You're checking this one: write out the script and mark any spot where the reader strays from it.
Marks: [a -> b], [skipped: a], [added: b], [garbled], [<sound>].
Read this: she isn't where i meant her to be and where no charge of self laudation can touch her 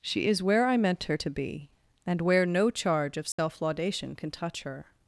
she [isn't -> is] where i meant her to be and where no charge of self [dropout] laudation can touch her